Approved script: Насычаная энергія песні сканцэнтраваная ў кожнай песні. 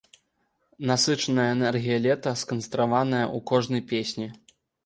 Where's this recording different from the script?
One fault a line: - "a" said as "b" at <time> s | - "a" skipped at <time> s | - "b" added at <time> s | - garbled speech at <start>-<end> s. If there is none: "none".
- "песні" said as "лета" at 2.1 s